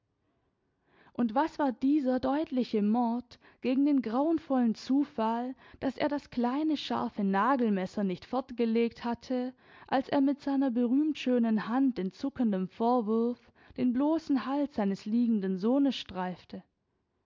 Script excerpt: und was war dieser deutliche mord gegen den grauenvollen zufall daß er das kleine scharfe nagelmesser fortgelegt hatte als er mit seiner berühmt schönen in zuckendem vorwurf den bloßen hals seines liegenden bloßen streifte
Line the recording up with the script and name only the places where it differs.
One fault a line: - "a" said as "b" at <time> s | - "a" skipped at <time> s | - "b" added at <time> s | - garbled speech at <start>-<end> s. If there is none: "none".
- "nicht" added at 8.0 s
- "hand" added at 11.7 s
- "bloßen" said as "sohnes" at 15.6 s